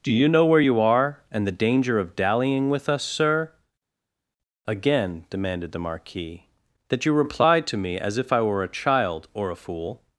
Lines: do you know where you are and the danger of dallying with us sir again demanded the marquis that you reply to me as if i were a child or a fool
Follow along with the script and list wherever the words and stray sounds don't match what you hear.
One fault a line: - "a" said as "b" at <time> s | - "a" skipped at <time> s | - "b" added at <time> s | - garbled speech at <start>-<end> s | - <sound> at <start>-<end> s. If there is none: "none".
none